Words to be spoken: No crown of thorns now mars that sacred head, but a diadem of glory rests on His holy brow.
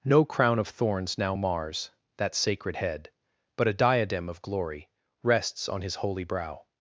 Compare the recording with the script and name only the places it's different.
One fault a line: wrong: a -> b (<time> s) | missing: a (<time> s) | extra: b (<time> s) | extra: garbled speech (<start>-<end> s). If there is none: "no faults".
no faults